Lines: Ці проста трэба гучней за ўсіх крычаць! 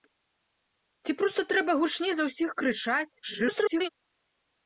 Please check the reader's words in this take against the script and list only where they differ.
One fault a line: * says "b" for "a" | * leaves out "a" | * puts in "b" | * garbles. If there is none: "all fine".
* garbles